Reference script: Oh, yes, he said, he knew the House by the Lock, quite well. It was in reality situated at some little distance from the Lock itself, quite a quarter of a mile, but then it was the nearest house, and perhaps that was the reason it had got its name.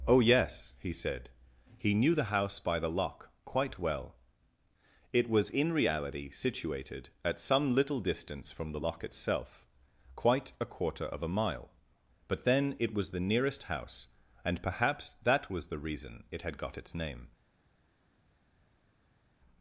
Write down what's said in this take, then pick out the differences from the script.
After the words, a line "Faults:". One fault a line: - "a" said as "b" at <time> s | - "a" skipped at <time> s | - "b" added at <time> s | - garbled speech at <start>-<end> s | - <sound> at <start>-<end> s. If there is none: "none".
Oh, yes, he said, he knew the House by the Lock, quite well. It was in reality situated at some little distance from the Lock itself, quite a quarter of a mile, but then it was the nearest house, and perhaps that was the reason it had got its name.
Faults:
none